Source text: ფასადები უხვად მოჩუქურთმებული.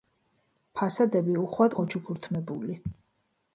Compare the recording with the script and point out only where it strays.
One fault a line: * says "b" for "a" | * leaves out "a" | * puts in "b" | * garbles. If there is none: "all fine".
all fine